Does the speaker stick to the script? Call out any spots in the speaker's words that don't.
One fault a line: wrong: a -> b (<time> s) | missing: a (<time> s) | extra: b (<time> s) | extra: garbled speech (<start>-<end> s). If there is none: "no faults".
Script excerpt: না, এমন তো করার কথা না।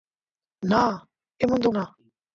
missing: করার কথা (1.7 s)